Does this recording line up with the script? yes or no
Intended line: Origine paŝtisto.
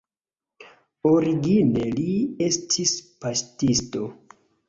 no